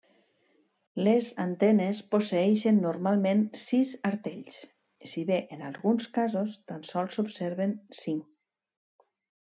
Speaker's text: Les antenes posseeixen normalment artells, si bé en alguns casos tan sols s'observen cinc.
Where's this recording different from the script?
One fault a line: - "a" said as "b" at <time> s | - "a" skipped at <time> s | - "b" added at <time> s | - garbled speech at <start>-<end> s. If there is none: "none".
- "sis" added at 3.6 s